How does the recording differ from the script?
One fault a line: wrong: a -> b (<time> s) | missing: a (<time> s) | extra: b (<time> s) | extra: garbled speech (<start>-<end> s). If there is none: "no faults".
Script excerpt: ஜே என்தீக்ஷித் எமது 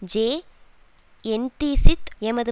no faults